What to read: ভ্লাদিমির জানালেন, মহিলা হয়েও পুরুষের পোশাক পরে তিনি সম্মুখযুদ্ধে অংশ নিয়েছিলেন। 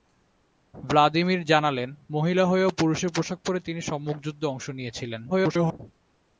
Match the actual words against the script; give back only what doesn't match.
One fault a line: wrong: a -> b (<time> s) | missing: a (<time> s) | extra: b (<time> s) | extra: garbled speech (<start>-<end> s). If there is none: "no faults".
extra: garbled speech (5.3-5.8 s)